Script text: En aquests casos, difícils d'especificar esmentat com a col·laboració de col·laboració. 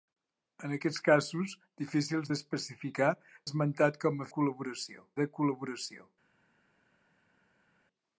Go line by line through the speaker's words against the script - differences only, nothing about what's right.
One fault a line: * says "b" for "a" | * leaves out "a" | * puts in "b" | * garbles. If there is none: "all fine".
all fine